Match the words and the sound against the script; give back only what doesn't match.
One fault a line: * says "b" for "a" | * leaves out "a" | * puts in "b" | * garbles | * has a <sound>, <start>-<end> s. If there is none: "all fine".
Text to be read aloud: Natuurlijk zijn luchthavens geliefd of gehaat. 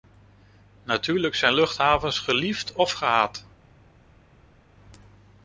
all fine